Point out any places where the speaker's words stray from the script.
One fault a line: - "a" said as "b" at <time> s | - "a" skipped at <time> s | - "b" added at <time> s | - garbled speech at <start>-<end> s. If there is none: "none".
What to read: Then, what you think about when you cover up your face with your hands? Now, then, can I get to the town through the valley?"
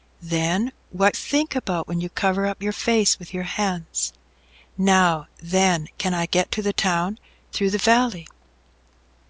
- "you" skipped at 1.1 s